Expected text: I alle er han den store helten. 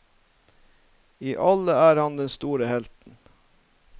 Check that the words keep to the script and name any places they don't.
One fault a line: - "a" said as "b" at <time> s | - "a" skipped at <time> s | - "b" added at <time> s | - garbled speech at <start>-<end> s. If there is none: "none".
none